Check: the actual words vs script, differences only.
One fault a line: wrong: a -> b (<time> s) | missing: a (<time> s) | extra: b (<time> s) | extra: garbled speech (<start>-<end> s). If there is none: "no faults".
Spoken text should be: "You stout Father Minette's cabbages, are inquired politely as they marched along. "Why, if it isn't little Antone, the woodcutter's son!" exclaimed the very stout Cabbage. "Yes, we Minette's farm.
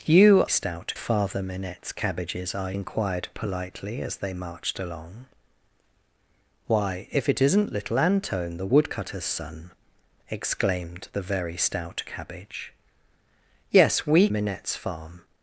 no faults